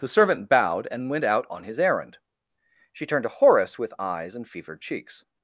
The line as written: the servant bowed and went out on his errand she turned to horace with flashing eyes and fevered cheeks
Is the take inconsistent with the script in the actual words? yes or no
yes